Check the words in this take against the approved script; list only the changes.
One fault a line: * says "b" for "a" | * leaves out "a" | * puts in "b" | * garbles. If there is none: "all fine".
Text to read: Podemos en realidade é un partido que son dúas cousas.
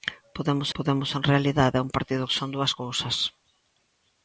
* puts in "podemos"